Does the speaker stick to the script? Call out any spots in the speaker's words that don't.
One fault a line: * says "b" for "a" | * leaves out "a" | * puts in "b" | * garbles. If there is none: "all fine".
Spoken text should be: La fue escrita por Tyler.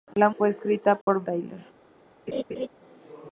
all fine